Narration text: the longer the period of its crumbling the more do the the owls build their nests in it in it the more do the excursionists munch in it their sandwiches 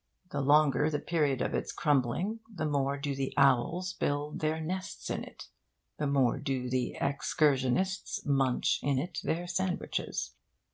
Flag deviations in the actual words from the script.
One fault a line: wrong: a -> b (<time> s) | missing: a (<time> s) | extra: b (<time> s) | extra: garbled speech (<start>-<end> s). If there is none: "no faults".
missing: the (3.4 s)
missing: in it (5.5 s)